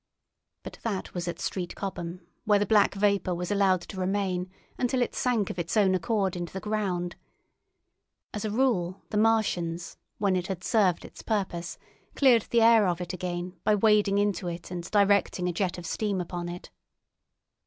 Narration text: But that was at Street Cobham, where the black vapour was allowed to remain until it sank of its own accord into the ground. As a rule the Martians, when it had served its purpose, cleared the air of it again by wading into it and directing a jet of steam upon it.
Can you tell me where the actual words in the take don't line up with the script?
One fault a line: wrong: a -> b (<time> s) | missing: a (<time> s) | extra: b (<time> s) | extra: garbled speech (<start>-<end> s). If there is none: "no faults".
no faults